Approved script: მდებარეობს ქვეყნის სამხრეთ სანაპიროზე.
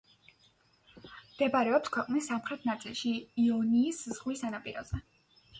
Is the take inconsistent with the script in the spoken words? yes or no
yes